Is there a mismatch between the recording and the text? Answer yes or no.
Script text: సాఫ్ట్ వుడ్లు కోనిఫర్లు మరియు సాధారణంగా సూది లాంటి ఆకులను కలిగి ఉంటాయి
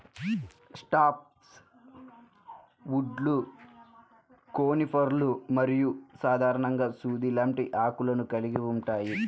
no